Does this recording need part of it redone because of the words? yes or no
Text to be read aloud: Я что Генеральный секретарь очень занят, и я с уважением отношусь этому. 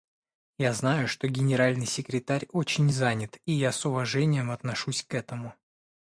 yes